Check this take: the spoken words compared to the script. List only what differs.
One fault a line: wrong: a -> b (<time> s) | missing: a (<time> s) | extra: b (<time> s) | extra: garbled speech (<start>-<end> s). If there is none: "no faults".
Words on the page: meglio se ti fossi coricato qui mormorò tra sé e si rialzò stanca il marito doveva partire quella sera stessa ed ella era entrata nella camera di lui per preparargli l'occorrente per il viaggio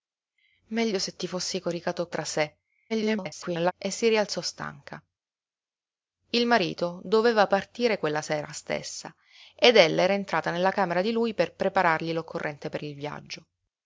missing: qui mormorò (2.1 s)
extra: garbled speech (2.9-3.7 s)